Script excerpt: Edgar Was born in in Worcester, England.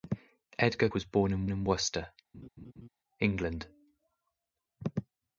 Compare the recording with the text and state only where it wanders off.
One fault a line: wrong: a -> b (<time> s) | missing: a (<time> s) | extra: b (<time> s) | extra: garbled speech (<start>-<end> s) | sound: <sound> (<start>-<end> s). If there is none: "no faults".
sound: laugh (2.3-2.9 s)